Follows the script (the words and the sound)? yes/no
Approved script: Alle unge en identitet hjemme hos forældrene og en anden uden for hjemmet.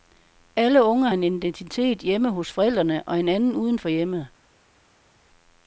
yes